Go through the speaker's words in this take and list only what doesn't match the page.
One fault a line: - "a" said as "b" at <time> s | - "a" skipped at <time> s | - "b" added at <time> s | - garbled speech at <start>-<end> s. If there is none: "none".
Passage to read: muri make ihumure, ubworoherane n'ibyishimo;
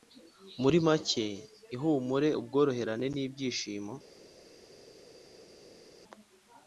none